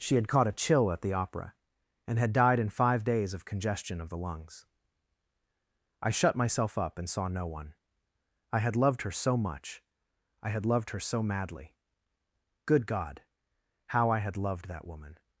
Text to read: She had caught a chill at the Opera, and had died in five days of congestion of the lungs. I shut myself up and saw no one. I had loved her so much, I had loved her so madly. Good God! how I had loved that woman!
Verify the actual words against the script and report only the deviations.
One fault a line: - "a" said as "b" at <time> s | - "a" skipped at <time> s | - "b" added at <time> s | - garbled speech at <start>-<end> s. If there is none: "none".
none